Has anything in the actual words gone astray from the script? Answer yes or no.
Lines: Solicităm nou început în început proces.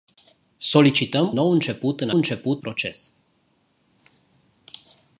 no